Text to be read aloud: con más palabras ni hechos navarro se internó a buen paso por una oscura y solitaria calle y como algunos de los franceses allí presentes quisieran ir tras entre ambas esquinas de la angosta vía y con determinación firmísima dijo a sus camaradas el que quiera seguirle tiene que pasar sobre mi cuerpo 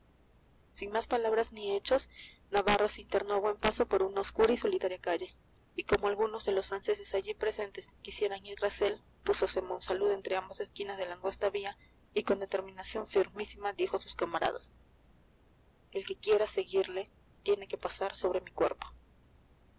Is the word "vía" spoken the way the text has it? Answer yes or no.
yes